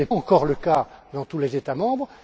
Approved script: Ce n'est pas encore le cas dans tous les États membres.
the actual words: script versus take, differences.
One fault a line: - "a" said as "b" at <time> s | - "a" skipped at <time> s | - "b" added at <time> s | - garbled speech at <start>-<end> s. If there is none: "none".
- "pas" skipped at 0.1 s